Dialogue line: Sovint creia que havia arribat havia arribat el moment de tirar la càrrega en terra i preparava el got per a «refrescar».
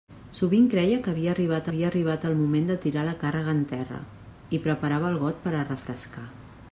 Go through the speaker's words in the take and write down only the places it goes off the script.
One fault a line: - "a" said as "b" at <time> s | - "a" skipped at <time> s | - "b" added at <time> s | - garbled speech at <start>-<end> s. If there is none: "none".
none